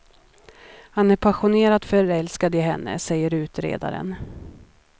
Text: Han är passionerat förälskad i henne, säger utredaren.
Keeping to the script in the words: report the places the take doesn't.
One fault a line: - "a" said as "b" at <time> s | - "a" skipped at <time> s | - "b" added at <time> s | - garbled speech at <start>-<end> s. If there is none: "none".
none